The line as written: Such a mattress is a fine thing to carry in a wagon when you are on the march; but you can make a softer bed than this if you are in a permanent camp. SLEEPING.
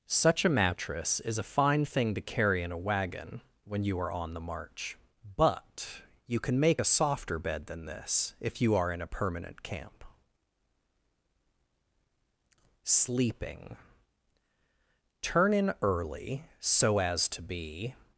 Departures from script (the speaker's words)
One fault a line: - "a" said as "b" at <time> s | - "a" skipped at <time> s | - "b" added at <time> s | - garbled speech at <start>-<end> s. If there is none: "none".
- "Turn in early so as to be" added at 15.2 s